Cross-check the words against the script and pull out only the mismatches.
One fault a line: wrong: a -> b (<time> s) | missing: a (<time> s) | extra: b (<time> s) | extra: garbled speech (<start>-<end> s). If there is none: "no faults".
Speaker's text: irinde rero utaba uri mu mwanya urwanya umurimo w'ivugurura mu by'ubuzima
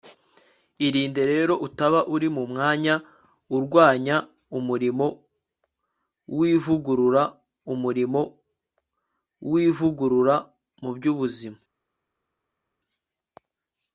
extra: umurimo w'ivugurura (7.7 s)